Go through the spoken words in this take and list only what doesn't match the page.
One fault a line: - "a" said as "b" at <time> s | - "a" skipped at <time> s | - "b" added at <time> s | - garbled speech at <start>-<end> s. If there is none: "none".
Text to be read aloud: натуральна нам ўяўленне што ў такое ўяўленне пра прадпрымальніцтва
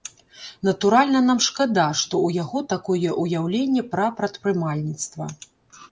- "ўяўленне" said as "шкада" at 1.5 s
- "яго" added at 2.4 s